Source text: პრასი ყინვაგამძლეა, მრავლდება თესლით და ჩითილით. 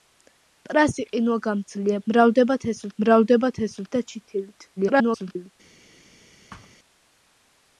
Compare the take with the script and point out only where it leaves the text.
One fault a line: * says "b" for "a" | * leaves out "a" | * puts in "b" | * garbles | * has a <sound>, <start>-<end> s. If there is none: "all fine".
* puts in "მრავლდება თესლით"
* garbles
* has a thud, 6.5-6.8 s